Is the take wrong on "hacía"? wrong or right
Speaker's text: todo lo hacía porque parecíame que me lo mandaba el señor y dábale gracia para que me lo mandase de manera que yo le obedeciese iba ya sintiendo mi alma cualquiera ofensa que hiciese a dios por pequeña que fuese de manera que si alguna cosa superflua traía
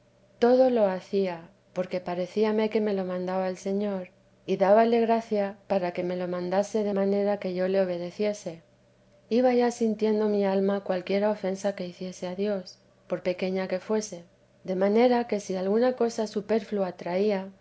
right